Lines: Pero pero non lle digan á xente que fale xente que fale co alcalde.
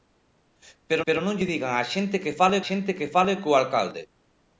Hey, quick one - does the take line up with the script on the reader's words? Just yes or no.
yes